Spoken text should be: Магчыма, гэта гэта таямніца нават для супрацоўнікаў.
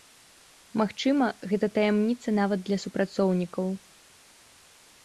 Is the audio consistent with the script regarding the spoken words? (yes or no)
no